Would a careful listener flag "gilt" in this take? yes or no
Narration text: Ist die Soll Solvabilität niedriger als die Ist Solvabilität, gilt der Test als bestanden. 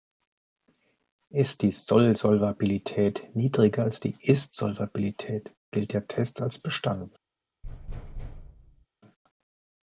no